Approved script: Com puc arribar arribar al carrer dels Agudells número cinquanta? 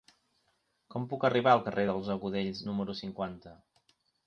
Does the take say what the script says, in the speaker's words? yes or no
no